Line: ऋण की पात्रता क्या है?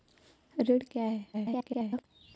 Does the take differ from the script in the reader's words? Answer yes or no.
yes